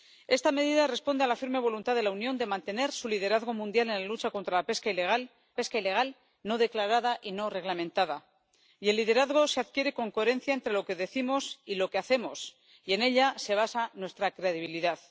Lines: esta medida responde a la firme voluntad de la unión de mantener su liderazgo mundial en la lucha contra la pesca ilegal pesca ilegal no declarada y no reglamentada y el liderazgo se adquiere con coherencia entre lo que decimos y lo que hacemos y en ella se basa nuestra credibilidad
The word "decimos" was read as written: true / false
true